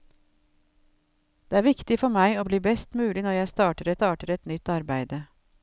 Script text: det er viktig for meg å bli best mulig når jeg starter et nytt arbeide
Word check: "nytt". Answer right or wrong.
right